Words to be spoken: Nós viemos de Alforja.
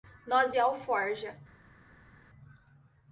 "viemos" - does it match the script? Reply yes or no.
no